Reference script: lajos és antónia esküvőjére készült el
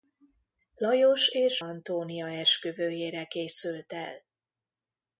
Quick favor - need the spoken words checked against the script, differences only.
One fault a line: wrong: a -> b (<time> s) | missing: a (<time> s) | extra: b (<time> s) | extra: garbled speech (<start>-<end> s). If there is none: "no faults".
no faults